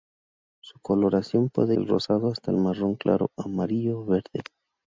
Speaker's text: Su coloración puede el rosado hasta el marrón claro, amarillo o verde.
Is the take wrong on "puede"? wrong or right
right